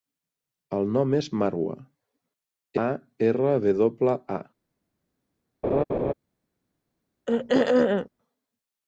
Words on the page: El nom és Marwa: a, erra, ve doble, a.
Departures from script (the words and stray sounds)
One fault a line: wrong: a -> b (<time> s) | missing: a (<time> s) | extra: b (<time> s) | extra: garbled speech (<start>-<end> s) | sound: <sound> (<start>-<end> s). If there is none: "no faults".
sound: laugh (5.6-6.1 s)
sound: throat clearing (7.3-8.1 s)